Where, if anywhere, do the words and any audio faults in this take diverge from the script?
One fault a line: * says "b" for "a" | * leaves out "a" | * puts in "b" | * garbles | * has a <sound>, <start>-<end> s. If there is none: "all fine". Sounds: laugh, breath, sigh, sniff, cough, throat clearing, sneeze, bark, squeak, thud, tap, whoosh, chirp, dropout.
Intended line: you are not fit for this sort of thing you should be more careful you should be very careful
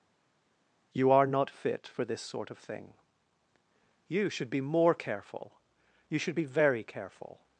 all fine